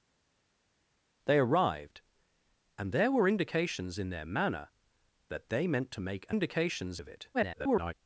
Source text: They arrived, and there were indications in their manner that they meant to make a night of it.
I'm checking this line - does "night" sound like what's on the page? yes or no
no